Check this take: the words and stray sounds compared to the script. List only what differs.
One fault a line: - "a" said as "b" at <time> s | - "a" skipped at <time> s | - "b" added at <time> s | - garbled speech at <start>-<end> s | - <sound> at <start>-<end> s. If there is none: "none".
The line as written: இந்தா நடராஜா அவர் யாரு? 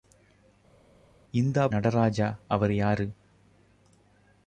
none